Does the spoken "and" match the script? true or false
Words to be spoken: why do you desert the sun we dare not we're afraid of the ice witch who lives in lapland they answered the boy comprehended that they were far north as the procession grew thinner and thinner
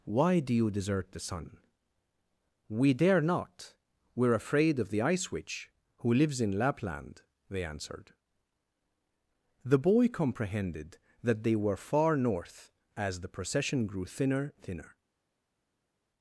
false